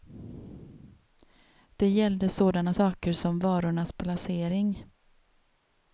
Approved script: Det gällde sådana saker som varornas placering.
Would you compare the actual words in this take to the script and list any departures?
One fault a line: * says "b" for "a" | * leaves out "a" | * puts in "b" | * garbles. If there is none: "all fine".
all fine